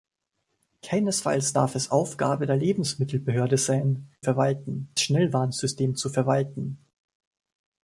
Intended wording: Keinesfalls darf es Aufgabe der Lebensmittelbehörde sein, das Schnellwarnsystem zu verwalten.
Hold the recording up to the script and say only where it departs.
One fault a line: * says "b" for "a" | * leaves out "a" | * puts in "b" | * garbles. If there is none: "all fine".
* says "verwalten" for "das"